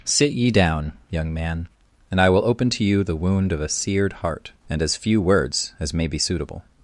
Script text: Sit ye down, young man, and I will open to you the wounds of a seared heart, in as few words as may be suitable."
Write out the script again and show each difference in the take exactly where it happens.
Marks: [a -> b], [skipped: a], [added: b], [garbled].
Sit ye down, young man, and I will open to you the [wounds -> wound] of a seared heart, [in -> and] as few words as may be suitable."